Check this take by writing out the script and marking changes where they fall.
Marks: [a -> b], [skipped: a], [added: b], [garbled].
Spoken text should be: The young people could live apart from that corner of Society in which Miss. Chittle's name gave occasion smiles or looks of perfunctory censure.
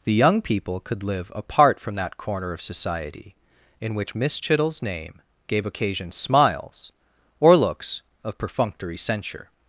The young people could live apart from that corner of Society in which Miss. Chittle's name gave occasion smiles or looks of perfunctory censure.